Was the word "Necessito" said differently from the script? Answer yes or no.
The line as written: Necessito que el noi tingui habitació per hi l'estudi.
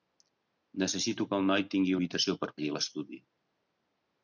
no